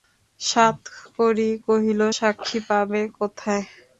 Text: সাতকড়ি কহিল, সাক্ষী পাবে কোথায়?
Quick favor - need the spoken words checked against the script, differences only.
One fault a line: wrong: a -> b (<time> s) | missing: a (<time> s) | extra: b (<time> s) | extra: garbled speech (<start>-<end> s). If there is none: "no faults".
no faults